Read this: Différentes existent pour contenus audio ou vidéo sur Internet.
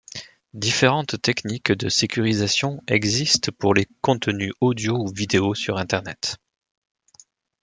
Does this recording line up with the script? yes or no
no